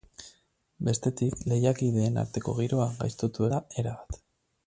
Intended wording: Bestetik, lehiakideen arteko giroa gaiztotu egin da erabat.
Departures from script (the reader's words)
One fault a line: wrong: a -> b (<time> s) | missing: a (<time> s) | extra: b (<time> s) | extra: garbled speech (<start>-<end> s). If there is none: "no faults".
missing: egin (3.5 s)